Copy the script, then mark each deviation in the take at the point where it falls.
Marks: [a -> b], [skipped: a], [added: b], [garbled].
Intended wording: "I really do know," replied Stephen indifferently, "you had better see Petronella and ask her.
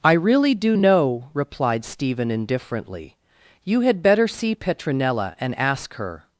"I really do know," replied Stephen indifferently, "you had better see Petronella and ask her.